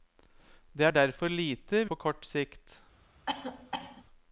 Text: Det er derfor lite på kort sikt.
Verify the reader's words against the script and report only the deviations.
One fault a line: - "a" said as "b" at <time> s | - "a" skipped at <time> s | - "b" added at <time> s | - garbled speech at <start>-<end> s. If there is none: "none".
none